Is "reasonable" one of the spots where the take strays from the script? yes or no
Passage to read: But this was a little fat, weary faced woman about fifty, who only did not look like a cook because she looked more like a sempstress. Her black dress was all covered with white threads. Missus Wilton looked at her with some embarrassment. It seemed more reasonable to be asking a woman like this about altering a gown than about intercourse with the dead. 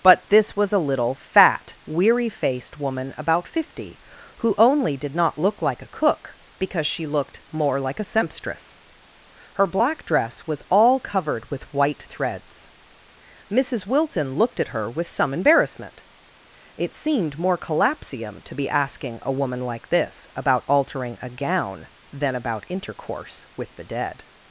yes